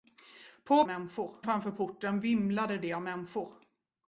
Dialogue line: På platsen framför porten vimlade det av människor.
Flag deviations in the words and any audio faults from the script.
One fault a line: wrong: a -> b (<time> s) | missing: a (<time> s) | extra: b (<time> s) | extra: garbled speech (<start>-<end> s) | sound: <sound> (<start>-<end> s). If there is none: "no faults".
wrong: platsen -> människor (0.8 s)